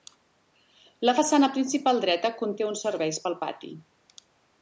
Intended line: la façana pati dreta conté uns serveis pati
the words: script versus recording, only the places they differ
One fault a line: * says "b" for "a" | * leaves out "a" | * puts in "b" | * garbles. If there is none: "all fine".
* says "principal" for "pati"
* puts in "pel"